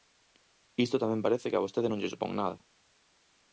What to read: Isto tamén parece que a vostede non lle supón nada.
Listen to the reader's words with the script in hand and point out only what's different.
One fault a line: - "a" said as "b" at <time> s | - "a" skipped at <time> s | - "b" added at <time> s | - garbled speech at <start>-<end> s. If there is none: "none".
none